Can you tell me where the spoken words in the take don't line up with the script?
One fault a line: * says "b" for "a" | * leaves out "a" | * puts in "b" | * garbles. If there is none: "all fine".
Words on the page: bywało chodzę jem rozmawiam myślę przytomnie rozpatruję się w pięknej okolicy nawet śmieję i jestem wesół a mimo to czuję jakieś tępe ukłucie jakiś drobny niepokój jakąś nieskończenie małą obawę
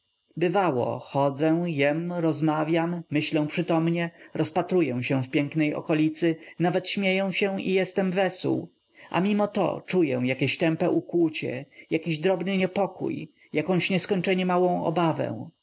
* puts in "się"